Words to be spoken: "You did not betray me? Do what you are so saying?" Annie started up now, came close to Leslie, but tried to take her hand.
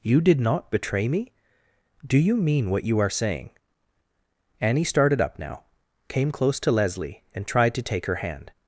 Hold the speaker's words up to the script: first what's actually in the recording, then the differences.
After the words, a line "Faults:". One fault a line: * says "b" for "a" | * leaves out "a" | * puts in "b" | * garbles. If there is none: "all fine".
"You did not betray me? Do you mean what you are saying?" Annie started up now, came close to Leslie, and tried to take her hand.
Faults:
* puts in "you mean"
* leaves out "so"
* says "and" for "but"